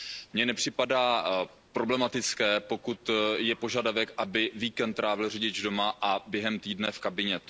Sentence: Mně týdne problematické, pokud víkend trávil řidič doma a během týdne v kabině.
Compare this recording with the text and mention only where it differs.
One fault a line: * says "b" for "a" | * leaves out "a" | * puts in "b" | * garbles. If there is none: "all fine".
* says "nepřipadá" for "týdne"
* puts in "je požadavek aby"